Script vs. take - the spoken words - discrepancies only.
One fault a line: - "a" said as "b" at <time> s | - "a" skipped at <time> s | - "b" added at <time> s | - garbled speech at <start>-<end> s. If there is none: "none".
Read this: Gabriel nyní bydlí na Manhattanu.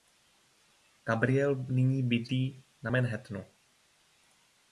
none